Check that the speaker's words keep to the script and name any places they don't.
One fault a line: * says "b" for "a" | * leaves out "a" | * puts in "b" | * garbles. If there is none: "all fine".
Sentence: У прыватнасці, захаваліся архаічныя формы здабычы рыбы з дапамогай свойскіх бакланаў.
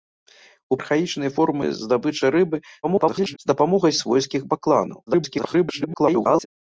* leaves out "прыватнасці захаваліся"
* garbles
* garbles